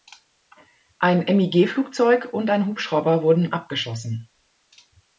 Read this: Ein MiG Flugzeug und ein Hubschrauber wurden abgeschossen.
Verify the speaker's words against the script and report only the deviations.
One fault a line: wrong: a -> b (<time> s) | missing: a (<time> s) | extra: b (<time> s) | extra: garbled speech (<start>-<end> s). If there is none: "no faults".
no faults